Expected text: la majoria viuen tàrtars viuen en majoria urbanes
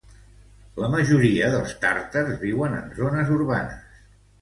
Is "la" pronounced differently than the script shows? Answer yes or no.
no